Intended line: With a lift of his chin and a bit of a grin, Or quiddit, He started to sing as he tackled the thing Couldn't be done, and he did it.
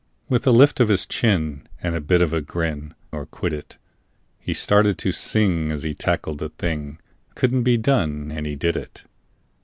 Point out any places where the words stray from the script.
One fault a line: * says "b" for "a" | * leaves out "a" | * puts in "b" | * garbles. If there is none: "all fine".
all fine